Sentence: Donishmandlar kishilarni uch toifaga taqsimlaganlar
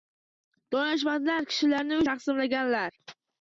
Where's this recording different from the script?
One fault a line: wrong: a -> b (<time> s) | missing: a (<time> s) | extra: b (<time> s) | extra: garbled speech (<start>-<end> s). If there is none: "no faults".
missing: uch toifaga (2.0 s)